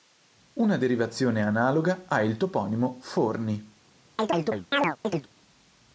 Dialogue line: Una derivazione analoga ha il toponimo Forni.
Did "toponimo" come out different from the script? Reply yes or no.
no